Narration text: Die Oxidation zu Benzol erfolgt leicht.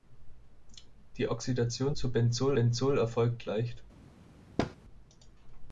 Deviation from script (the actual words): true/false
true